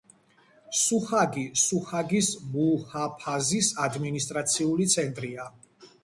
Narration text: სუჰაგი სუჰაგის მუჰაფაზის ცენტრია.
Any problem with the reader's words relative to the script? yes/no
yes